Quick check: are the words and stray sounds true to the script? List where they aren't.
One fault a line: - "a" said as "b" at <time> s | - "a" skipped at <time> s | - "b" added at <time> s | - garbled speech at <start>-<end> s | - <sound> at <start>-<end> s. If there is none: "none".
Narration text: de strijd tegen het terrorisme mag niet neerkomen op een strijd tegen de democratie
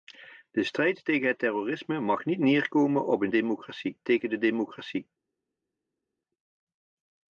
- "strijd" said as "democratie" at 3.3 s